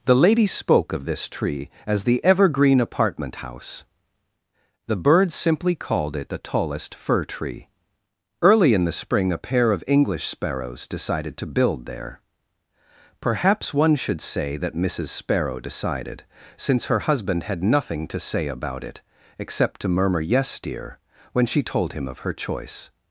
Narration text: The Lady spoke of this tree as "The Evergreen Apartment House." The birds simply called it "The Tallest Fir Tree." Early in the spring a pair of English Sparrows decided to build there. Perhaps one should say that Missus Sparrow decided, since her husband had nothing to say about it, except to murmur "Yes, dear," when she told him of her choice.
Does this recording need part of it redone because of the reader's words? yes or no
no